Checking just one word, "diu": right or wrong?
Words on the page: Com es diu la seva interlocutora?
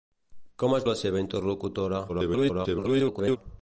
wrong